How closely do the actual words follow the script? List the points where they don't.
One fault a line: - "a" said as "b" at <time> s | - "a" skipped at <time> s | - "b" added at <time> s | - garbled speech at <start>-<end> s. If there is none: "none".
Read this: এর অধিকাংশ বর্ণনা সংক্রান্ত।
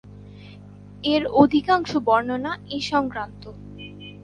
- "এ" added at 2.7 s